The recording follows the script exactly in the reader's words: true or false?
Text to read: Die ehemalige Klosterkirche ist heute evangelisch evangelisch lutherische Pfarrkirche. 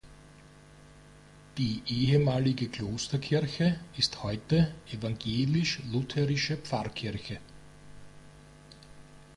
false